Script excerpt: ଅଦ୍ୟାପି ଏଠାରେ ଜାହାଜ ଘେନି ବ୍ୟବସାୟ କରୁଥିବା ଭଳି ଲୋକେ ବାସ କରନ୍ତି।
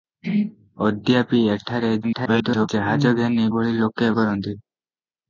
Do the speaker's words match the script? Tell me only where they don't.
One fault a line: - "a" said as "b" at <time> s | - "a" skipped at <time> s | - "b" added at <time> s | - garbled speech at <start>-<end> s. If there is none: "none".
- garbled speech at 2.0-2.7 s
- "ବ୍ୟବସାୟ କରୁଥିବା" skipped at 3.4 s
- "ବାସ" skipped at 4.1 s